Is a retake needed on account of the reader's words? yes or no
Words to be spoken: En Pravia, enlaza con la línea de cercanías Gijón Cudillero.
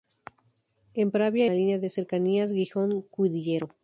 yes